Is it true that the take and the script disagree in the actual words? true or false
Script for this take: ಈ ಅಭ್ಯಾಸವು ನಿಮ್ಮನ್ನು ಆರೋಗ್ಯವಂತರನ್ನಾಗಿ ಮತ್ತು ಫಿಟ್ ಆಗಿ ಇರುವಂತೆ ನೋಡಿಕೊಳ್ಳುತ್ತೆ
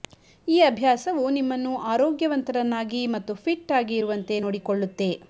false